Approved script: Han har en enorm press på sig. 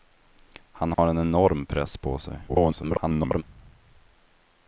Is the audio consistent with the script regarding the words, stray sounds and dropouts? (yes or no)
no